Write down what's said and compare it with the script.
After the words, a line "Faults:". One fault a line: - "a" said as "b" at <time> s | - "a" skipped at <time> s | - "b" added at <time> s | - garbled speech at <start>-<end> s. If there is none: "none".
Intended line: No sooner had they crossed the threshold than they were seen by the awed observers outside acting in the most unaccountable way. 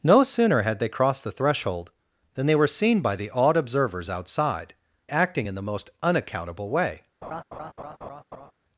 No sooner had they crossed the threshold than they were seen by the awed observers outside acting in the most unaccountable way.
Faults:
none